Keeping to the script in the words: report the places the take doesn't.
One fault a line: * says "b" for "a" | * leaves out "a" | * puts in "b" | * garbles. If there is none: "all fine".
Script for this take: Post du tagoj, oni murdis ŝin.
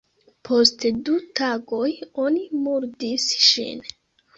all fine